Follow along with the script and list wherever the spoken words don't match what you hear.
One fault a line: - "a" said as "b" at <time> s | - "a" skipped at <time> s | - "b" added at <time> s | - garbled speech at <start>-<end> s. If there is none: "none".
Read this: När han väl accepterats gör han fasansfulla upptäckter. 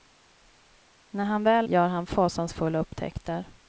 - "accepterats" skipped at 1.7 s